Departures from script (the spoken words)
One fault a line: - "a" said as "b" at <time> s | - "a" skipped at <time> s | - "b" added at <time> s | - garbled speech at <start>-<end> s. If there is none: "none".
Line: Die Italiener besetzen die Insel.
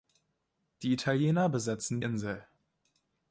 - "die" skipped at 2.0 s